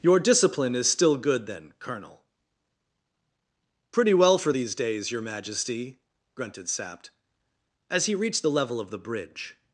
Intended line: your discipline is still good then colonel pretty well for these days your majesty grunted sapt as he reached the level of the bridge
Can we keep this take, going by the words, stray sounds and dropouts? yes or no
yes